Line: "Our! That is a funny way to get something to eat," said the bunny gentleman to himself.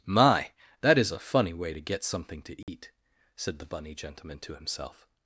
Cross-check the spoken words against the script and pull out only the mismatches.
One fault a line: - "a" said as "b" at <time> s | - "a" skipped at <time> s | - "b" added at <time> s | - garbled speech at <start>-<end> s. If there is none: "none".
- "Our" said as "My" at 0.1 s